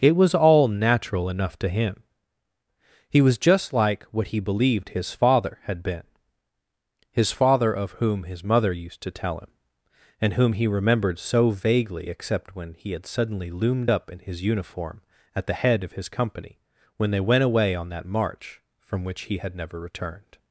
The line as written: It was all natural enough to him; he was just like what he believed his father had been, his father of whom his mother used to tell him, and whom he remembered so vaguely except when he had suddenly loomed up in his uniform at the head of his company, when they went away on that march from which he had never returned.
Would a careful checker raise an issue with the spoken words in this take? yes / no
no